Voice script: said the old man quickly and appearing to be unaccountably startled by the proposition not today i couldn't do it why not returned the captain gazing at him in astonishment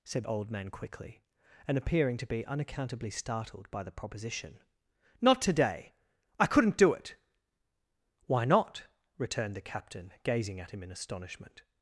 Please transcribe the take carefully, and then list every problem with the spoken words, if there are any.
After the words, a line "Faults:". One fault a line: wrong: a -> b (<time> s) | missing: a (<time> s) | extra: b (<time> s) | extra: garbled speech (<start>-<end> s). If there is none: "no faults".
said old man quickly and appearing to be unaccountably startled by the proposition not today i couldn't do it why not returned the captain gazing at him in astonishment
Faults:
missing: the (0.2 s)